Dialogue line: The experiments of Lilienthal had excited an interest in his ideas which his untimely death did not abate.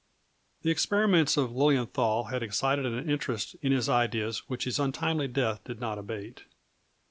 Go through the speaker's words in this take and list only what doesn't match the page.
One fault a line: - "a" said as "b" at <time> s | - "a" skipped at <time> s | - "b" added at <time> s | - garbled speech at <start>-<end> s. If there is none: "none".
none